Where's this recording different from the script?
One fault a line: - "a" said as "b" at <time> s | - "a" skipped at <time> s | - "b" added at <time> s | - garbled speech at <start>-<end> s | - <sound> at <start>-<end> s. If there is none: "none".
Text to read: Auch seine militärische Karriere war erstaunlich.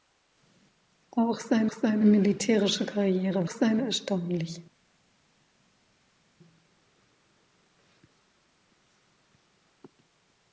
- "seine" added at 1.7 s
- "war" said as "seine" at 3.5 s